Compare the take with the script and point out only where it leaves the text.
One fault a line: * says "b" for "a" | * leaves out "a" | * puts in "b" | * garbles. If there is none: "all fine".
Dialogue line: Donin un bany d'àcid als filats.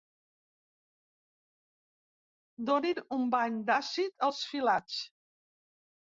all fine